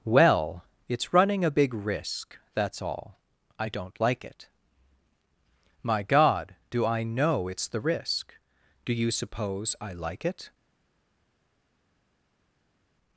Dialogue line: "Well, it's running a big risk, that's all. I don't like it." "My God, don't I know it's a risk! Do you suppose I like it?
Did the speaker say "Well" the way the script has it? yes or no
yes